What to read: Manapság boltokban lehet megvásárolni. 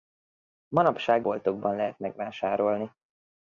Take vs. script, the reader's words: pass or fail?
pass